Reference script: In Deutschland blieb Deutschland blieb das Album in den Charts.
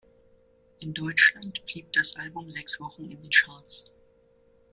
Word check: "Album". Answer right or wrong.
wrong